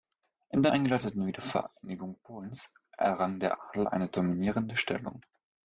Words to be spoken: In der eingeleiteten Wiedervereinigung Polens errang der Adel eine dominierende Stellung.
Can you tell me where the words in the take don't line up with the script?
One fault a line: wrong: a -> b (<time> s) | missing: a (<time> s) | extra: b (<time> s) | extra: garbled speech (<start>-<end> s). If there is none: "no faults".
no faults